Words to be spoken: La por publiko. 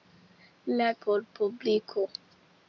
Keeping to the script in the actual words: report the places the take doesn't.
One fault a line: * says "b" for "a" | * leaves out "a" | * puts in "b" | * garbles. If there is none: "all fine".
all fine